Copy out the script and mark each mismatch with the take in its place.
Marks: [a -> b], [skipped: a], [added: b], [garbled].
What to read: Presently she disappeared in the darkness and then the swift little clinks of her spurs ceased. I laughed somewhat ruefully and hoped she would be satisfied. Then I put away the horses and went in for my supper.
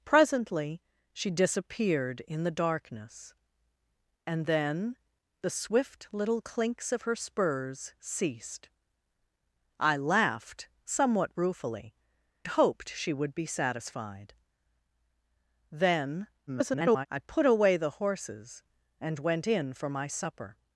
Presently she disappeared in the darkness and then the swift little clinks of her spurs ceased. I laughed somewhat ruefully [skipped: and] hoped she would be satisfied. Then [garbled] I put away the horses and went in for my supper.